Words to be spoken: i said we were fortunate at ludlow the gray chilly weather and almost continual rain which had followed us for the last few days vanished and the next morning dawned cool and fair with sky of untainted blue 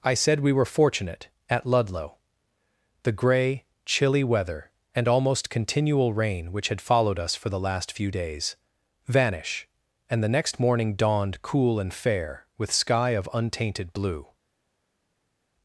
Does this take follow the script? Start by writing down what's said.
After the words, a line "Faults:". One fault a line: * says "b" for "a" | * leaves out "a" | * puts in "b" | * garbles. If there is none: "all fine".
i said we were fortunate at ludlow the gray chilly weather and almost continual rain which had followed us for the last few days vanish and the next morning dawned cool and fair with sky of untainted blue
Faults:
* says "vanish" for "vanished"